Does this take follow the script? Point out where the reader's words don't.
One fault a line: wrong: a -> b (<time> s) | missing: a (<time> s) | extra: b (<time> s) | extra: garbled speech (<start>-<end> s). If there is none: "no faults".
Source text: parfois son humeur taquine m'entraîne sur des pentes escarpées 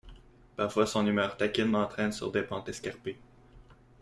no faults